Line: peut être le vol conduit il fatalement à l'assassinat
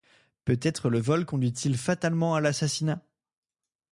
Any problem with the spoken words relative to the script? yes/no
no